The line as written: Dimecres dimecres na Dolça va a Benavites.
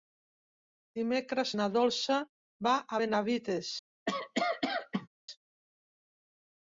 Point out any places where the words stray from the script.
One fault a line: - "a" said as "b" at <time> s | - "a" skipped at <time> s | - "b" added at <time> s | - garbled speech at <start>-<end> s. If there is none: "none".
- "dimecres" skipped at 1.5 s